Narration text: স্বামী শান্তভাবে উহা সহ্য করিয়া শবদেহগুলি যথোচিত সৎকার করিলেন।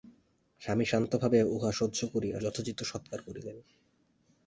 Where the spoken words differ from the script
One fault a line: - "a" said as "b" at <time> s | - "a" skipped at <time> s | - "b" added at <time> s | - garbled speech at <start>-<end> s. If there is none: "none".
- "শবদেহগুলি" skipped at 2.4 s